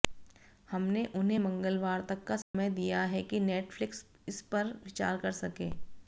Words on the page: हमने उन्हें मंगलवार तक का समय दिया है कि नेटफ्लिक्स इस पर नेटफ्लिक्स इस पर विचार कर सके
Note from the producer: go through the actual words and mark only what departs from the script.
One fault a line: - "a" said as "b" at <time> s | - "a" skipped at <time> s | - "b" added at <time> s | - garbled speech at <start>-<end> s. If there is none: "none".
- "नेटफ्लिक्स इस पर" skipped at 4.7 s